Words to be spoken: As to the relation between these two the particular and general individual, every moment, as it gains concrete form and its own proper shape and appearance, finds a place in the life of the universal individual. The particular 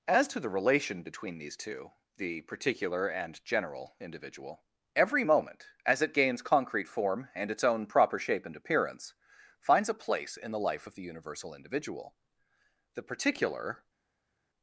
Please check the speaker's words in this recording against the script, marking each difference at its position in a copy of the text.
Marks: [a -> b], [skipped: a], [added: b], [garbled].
As to the relation between these two the particular and general individual, every moment, as it gains concrete form and its own proper shape and appearance, finds a place in the life of the universal individual. The particular